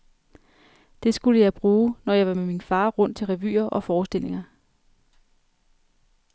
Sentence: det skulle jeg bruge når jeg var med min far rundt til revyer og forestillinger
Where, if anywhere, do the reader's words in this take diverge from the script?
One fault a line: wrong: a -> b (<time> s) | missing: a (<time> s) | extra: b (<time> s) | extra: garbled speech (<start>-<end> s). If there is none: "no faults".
no faults